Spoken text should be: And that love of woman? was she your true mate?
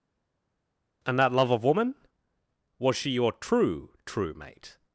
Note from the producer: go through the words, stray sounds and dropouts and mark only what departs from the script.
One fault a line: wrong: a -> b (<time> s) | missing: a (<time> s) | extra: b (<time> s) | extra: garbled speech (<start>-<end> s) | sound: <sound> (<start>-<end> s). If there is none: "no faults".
extra: true (4.1 s)